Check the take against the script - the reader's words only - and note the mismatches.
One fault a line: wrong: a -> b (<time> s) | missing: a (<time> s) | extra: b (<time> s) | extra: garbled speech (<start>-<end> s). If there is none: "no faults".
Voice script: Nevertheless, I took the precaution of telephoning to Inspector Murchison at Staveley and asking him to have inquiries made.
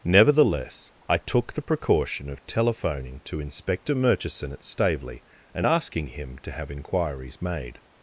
no faults